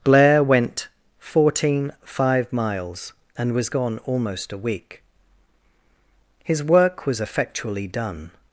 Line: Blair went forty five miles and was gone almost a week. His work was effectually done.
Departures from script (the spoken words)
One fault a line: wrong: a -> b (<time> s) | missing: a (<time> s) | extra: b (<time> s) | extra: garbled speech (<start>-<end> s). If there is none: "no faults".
wrong: forty -> fourteen (1.2 s)